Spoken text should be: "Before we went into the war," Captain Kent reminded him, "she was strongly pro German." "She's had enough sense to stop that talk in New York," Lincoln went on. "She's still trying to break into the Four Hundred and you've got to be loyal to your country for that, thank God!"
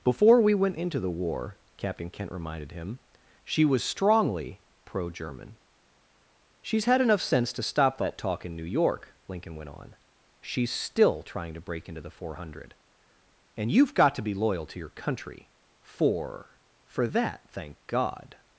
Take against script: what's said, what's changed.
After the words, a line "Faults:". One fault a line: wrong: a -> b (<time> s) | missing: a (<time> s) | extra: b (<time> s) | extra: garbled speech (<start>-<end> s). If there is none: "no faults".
"Before we went into the war," Captain Kent reminded him, "she was strongly pro German." "She's had enough sense to stop that talk in New York," Lincoln went on. "She's still trying to break into the Four Hundred and you've got to be loyal to your country for for that, thank God!"
Faults:
extra: for (16.8 s)